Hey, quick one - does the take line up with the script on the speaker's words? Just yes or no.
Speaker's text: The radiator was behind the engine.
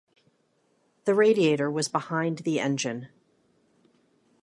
yes